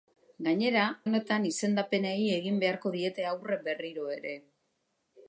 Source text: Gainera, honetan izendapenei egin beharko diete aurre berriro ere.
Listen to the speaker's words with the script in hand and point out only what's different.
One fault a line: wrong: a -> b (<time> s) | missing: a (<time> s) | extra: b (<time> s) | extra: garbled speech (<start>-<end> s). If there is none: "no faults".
no faults